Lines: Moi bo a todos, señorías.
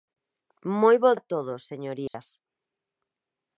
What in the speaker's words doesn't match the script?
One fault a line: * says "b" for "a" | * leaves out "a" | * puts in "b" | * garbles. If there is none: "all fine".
all fine